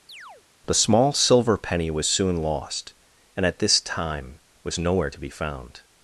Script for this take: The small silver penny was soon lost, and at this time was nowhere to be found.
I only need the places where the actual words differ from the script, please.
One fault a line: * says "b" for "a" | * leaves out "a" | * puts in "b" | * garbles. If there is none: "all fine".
all fine